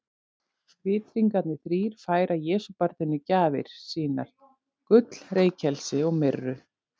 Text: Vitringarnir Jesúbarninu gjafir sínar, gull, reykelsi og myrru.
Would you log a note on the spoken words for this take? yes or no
yes